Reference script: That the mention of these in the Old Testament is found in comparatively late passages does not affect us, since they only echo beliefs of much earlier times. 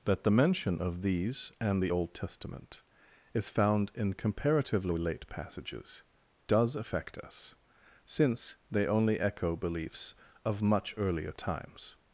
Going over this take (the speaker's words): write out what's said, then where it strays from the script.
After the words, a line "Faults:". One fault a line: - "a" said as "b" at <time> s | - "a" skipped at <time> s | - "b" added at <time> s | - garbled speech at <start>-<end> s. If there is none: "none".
That the mention of these and the Old Testament is found in comparatively late passages does affect us, since they only echo beliefs of much earlier times.
Faults:
- "in" said as "and" at 1.6 s
- "not" skipped at 6.7 s